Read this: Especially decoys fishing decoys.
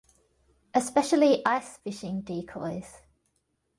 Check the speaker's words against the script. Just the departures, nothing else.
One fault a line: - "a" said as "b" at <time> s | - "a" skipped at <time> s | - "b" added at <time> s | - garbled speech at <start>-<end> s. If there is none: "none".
- "decoys" said as "ice" at 1.4 s